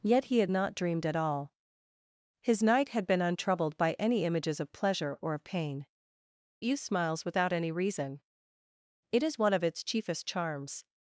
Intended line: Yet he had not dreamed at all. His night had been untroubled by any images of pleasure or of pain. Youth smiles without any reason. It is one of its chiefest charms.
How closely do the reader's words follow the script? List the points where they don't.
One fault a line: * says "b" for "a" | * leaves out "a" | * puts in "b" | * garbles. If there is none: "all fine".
all fine